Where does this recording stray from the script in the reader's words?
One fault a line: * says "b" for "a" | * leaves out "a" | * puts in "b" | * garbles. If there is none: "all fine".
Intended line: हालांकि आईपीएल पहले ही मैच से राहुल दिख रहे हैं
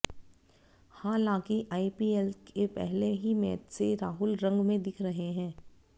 * puts in "के"
* puts in "रंग में"